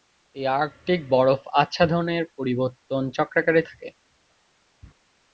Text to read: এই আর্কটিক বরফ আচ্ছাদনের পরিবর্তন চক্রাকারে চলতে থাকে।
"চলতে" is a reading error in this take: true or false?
true